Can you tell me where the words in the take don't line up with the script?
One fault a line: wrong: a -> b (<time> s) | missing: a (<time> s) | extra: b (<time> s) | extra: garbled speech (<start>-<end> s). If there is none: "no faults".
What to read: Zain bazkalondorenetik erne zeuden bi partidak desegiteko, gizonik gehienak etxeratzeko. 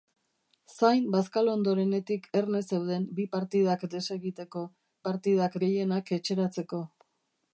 wrong: gizonik -> partidak (5.1 s)